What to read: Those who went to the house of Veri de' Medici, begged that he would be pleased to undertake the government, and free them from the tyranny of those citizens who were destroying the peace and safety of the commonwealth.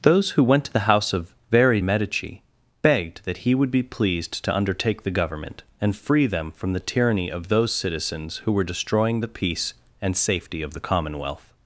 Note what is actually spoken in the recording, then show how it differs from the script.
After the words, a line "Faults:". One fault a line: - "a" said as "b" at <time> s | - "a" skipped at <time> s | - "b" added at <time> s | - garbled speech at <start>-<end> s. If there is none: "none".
Those who went to the house of Veri' Medici, begged that he would be pleased to undertake the government, and free them from the tyranny of those citizens who were destroying the peace and safety of the commonwealth.
Faults:
- "de" skipped at 1.8 s